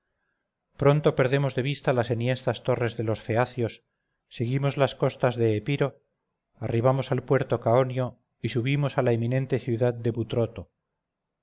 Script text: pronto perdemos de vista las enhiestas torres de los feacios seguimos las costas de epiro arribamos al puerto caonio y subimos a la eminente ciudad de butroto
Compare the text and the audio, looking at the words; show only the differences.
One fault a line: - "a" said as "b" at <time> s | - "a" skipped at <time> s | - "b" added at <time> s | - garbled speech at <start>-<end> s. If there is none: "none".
none